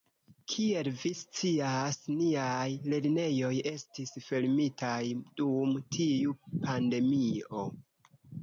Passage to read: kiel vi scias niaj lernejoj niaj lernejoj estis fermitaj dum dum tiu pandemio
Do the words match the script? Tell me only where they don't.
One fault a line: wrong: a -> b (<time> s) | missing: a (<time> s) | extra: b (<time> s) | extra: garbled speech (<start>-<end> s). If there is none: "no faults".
missing: niaj lernejoj (3.5 s)
missing: dum (5.8 s)